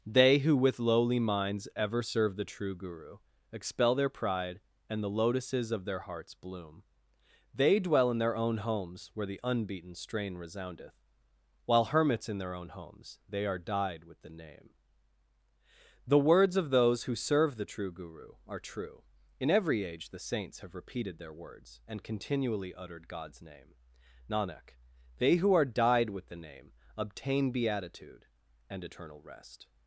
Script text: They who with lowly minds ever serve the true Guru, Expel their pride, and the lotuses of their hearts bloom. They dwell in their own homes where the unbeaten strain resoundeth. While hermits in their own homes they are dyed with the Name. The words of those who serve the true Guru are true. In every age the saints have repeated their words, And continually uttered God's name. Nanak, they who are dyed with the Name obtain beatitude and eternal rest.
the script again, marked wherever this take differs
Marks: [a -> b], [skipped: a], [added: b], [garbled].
They who with lowly minds ever serve the true Guru, Expel their pride, and the lotuses of their hearts bloom. They dwell in their own homes where the unbeaten strain resoundeth. While hermits in their own homes they are dyed with the Name. The words of those who serve the true Guru are true. In every age the saints have repeated their words, And continually uttered God's name. Nanak, they who are dyed with the Name obtain beatitude and eternal rest.